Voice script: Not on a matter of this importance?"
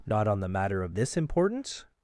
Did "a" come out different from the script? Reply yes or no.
yes